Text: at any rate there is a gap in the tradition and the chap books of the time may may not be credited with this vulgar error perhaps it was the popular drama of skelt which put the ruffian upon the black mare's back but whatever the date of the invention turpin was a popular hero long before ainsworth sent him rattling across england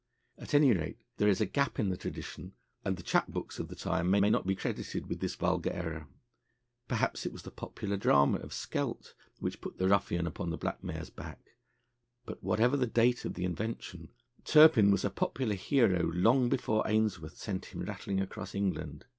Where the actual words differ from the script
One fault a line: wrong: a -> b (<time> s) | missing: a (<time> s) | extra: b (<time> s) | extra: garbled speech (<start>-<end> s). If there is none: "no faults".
no faults